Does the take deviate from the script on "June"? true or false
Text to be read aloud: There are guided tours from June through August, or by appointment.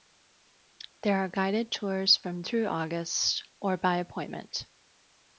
true